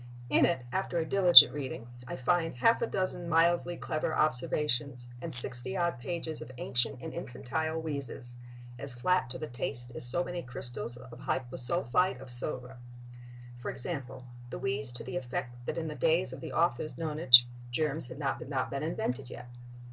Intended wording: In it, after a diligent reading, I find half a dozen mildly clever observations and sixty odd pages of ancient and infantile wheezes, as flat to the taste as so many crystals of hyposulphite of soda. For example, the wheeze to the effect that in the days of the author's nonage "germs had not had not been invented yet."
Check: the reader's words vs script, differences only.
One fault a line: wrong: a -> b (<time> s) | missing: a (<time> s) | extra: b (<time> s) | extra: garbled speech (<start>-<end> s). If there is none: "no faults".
no faults